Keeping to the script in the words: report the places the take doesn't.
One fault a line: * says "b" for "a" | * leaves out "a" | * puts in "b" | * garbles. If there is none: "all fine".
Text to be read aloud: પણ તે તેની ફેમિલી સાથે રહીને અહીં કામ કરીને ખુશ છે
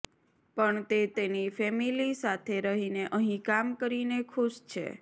all fine